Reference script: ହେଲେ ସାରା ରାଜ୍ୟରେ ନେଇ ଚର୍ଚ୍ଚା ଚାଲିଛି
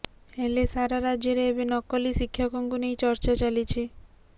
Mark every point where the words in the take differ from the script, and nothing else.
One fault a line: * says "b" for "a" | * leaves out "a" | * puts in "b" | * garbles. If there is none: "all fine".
* puts in "ଏବେ ନକଲି ଶିକ୍ଷକଙ୍କୁ"